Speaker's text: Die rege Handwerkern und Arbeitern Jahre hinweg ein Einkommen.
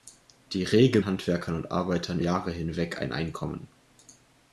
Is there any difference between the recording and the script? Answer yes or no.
no